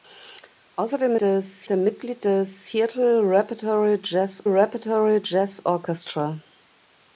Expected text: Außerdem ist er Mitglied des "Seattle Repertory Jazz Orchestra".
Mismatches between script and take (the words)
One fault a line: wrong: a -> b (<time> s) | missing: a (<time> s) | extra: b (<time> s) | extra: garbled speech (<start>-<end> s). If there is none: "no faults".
wrong: ist -> des (1.2 s)
extra: Repertory Jazz (4.5 s)